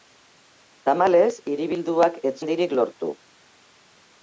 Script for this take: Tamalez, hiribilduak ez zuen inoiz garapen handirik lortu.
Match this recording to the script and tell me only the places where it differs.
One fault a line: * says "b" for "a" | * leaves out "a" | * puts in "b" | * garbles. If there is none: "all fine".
* leaves out "zuen inoiz garapen"